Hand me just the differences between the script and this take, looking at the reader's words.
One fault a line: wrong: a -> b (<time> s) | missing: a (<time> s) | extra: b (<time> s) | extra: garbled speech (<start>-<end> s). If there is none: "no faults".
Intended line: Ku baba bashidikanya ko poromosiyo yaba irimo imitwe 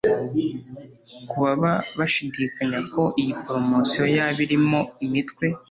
extra: iyi (3.2 s)